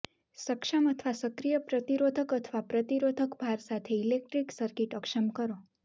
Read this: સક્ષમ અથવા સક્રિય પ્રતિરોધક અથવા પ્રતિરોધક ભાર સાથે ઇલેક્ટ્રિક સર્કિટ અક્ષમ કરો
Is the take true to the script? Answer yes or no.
yes